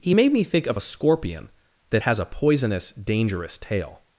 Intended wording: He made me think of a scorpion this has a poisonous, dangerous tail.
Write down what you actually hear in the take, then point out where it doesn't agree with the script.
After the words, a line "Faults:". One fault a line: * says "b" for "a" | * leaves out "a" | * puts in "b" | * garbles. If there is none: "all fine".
He made me think of a scorpion that has a poisonous, dangerous tail.
Faults:
* says "that" for "this"